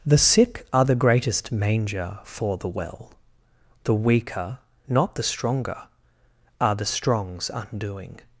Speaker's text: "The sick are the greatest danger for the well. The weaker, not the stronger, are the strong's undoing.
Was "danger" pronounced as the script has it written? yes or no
no